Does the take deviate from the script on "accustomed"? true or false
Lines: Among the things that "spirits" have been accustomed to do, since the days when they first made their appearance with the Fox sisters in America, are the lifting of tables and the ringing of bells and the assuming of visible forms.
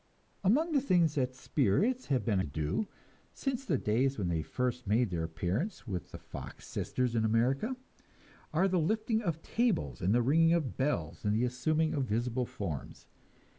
true